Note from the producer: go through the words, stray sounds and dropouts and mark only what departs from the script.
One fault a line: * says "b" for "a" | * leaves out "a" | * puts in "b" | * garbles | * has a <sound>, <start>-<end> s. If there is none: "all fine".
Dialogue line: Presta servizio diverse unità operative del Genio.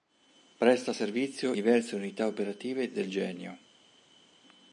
all fine